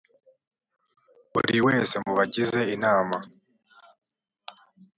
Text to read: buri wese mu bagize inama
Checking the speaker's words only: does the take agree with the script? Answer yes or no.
yes